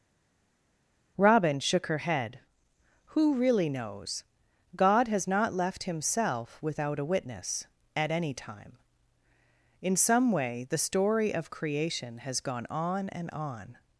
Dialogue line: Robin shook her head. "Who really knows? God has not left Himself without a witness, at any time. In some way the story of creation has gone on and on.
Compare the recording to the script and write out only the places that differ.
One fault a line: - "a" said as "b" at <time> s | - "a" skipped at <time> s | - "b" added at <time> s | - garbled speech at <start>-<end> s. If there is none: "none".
none